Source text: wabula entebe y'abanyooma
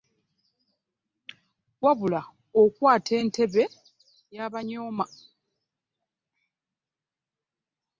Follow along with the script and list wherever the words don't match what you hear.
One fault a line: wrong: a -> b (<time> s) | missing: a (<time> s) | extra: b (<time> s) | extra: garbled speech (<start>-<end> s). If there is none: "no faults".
extra: okwata (2.6 s)